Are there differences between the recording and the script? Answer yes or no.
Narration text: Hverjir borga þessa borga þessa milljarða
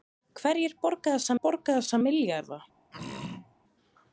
no